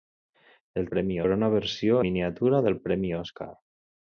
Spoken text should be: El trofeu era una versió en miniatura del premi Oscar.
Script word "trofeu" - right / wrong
wrong